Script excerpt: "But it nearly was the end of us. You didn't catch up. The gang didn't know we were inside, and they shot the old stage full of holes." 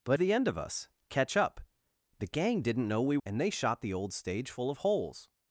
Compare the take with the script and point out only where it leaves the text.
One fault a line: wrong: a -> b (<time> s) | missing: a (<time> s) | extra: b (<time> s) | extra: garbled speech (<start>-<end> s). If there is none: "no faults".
missing: it nearly was (0.2 s)
missing: You didn't (0.9 s)
missing: were inside (3.2 s)